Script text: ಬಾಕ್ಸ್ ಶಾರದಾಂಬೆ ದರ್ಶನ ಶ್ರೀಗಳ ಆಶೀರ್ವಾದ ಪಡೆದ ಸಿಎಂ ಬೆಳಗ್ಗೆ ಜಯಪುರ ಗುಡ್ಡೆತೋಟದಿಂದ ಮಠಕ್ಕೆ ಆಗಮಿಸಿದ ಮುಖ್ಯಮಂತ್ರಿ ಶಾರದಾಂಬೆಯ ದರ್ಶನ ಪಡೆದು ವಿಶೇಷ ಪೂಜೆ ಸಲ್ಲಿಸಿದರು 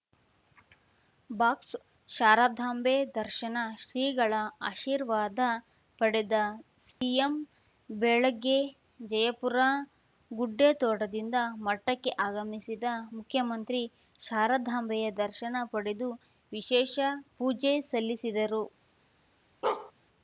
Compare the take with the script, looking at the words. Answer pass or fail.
pass